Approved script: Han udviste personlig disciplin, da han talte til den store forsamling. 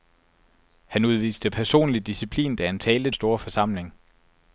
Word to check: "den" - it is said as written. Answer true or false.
false